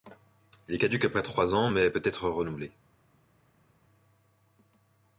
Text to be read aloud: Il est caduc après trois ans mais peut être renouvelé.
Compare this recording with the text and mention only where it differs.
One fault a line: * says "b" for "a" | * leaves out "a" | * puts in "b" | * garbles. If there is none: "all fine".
all fine